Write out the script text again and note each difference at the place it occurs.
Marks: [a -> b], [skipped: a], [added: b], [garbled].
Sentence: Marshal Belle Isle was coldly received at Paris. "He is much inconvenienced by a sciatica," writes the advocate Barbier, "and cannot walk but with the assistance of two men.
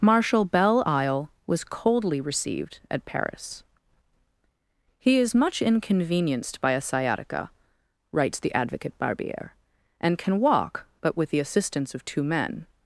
Marshal Belle Isle was coldly received at Paris. "He is much inconvenienced by a sciatica," writes the advocate Barbier, "and [cannot -> can] walk but with the assistance of two men.